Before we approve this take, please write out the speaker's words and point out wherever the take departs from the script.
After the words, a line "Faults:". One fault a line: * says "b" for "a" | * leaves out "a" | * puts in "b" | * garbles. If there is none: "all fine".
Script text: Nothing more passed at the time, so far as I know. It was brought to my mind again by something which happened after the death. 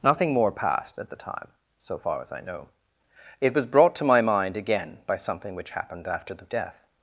Nothing more passed at the time, so far as I know. It was brought to my mind again by something which happened after the death.
Faults:
all fine